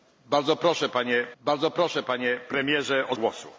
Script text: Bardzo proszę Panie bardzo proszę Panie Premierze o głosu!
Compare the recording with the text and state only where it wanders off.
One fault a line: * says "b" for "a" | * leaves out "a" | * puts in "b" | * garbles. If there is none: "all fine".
all fine